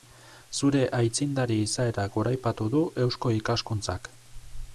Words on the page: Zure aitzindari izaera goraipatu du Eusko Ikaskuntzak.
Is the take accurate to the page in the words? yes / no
yes